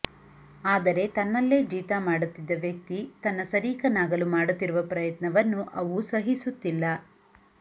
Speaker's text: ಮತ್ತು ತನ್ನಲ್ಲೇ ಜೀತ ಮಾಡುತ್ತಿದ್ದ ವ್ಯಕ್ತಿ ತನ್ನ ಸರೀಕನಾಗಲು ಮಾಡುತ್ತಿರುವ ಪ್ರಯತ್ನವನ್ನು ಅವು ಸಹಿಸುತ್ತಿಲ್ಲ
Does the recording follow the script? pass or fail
fail